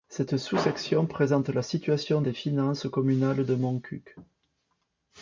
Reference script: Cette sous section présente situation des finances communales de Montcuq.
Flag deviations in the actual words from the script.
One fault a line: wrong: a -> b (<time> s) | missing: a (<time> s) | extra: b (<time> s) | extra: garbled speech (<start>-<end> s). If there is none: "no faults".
extra: la (1.5 s)